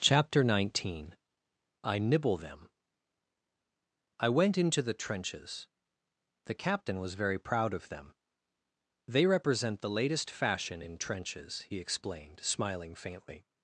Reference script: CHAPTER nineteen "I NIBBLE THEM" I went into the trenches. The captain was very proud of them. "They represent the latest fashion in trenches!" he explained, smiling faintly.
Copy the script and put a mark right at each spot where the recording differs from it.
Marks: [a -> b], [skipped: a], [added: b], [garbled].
CHAPTER nineteen "I NIBBLE THEM" I went into the trenches. The captain was very proud of them. "They represent the latest fashion in trenches!" he explained, smiling faintly.